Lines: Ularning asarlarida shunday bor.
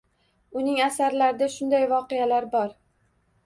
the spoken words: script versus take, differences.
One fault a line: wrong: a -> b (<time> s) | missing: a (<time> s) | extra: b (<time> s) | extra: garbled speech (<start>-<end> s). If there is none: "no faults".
wrong: Ularning -> Uning (0.6 s)
extra: voqealar (1.9 s)